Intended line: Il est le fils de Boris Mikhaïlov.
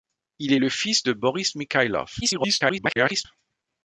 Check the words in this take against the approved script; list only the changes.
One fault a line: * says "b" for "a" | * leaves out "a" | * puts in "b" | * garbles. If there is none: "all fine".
* garbles